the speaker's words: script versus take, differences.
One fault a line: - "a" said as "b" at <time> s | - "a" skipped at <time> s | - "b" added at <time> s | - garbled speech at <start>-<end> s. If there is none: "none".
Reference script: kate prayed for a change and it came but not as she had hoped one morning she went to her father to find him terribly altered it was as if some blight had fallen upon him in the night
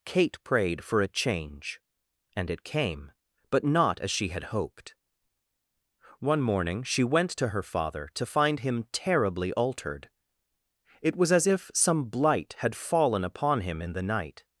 none